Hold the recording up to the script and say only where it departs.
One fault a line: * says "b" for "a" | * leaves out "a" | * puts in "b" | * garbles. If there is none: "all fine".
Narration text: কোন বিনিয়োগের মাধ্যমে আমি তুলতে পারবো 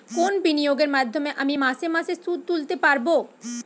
* puts in "মাসে মাসে সুদ"